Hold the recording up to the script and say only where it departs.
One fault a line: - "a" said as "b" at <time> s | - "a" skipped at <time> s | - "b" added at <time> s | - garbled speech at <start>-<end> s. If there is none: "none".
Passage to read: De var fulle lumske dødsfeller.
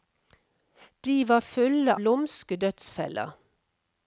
none